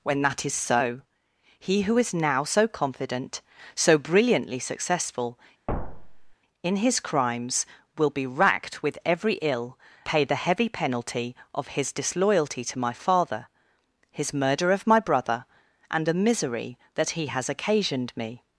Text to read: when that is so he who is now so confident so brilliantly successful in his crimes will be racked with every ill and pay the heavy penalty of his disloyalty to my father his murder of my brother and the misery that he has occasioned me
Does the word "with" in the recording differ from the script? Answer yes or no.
no